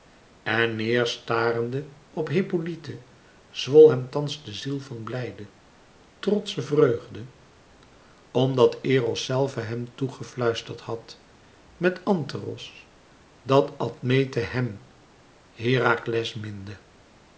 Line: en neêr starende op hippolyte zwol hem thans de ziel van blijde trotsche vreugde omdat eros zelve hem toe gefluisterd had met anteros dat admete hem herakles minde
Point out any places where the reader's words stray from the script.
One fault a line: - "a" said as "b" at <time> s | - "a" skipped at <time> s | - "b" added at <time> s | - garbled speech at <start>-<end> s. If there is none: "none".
none